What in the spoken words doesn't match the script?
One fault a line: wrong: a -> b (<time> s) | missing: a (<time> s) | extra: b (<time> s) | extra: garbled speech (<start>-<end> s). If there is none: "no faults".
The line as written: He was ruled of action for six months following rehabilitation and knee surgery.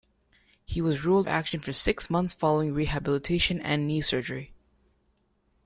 no faults